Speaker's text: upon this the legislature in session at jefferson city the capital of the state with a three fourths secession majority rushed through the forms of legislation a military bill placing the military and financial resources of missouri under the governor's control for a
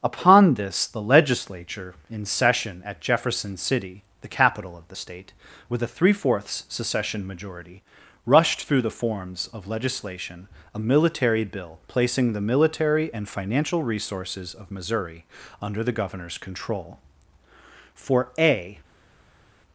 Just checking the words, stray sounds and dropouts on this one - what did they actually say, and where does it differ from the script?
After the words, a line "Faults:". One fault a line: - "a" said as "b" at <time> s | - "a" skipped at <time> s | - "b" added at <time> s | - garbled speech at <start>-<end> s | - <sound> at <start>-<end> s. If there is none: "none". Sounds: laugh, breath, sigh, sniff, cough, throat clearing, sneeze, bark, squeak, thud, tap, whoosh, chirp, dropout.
upon this the legislature in session at jefferson city the capital of the state with a three fourths secession majority rushed through the forms of legislation a military bill placing the military and financial resources of missouri under the governor's control for a
Faults:
none